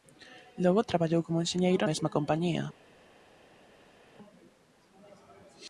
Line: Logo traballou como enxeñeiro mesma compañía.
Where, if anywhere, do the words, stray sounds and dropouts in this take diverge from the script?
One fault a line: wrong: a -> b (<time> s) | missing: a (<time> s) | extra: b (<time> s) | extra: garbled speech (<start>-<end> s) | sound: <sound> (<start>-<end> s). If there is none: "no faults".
no faults